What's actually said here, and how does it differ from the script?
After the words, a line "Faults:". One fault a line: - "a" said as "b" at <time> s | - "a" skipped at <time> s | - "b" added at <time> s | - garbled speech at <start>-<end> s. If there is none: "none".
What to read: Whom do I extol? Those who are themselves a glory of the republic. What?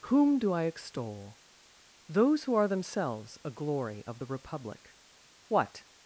Whom do I extol? Those who are themselves a glory of the republic. What?
Faults:
none